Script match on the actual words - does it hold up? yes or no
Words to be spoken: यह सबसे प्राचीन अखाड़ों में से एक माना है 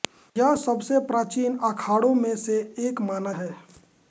yes